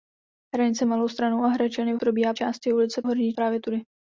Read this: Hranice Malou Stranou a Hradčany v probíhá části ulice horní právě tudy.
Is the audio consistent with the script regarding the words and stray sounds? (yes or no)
yes